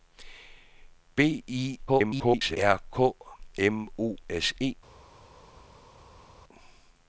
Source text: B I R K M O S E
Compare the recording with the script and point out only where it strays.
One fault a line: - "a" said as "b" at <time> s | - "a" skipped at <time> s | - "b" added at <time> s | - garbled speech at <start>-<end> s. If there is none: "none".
- garbled speech at 1.9-2.6 s